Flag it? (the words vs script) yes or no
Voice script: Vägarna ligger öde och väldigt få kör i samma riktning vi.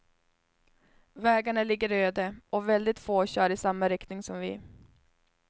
yes